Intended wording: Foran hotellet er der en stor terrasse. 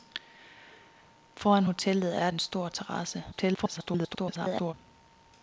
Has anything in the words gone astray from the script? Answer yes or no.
yes